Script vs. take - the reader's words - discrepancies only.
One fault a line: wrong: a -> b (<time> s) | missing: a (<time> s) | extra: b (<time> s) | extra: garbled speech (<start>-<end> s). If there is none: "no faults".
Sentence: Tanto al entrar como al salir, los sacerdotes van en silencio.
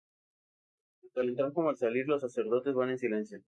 no faults